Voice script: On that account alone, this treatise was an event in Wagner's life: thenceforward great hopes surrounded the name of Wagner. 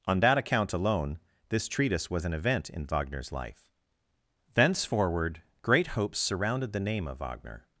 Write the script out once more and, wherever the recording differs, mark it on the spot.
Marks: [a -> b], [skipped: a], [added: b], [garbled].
On that account alone, this treatise was an event in Wagner's life: thenceforward great hopes surrounded the name of Wagner.